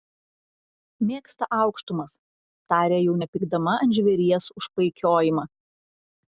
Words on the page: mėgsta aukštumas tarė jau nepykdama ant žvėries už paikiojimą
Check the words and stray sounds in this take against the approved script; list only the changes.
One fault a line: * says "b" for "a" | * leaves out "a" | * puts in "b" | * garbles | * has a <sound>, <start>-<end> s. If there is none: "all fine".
all fine